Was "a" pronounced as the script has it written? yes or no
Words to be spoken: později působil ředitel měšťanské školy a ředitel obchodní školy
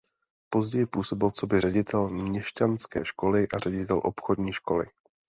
yes